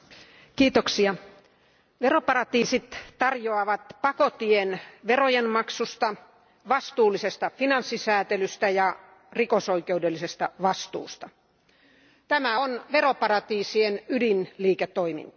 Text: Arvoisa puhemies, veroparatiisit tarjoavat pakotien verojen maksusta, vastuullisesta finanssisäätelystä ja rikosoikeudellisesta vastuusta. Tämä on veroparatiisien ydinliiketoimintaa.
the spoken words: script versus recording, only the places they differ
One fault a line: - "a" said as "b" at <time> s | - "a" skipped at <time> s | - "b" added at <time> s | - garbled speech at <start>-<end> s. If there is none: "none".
none